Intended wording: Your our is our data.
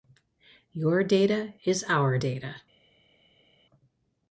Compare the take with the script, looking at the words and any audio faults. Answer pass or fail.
fail